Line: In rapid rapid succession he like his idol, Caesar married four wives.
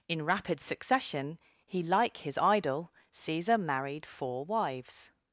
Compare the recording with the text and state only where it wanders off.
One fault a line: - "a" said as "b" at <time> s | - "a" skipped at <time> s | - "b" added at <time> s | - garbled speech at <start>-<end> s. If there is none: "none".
- "rapid" skipped at 0.6 s